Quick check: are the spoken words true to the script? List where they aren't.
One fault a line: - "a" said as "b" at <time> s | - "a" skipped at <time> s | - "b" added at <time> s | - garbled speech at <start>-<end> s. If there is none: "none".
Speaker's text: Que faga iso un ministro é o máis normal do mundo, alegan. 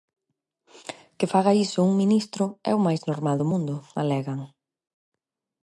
none